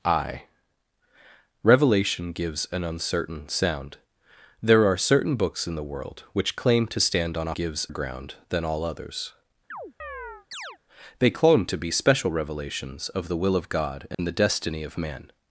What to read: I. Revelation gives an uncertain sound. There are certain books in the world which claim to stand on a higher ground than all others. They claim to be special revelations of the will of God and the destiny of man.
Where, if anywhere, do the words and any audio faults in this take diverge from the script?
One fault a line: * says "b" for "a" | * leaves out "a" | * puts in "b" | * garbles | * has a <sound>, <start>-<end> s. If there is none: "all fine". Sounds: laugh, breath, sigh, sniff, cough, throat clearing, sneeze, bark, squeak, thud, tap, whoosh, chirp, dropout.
* says "gives" for "higher"
* has a chirp, 9.7-10.8 s
* has a dropout, 14.1-14.2 s